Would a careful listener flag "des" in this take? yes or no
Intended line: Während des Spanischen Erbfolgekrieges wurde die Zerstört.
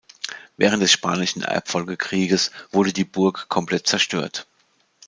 no